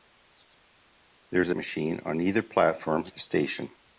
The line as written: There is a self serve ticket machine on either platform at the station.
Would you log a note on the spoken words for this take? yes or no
yes